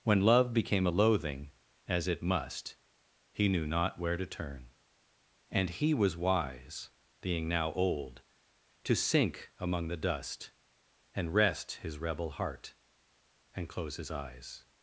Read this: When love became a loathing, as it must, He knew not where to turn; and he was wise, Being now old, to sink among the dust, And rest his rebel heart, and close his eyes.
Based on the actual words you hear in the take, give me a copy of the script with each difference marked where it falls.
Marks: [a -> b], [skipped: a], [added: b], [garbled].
When love became a loathing, as it must, He knew not where to turn; and he was wise, Being now old, to sink among the dust, And rest his rebel heart, and close his eyes.